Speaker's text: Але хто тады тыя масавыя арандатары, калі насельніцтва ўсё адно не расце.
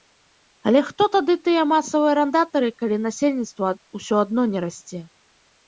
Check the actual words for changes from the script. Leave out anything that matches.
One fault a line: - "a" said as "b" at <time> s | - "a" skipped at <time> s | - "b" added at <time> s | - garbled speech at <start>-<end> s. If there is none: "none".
none